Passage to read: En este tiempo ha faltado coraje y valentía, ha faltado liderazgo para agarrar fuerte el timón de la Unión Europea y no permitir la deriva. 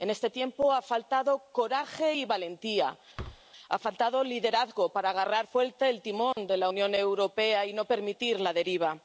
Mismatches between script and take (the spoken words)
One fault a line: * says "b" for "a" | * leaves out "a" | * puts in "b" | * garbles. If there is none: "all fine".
all fine